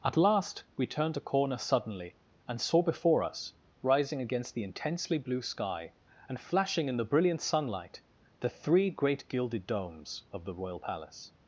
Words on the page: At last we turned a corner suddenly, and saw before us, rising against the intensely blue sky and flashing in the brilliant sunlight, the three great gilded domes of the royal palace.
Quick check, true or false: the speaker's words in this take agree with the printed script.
true